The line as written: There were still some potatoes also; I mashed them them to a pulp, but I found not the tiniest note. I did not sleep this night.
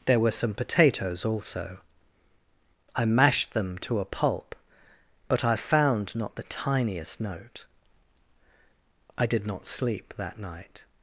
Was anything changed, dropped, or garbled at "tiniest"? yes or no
no